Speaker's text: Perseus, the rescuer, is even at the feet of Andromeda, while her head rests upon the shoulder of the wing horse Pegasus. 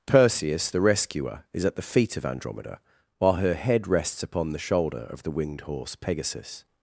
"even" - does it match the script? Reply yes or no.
no